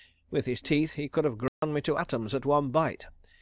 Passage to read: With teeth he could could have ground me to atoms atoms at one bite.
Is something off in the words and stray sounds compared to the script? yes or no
yes